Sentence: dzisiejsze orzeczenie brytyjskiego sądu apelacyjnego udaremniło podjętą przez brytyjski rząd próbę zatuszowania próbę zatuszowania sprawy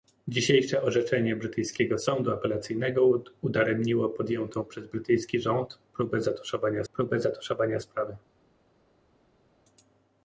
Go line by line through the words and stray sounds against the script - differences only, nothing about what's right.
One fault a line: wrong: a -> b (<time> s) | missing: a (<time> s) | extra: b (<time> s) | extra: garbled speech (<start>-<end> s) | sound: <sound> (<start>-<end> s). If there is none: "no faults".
no faults